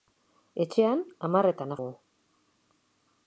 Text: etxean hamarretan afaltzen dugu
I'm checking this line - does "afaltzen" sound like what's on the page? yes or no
no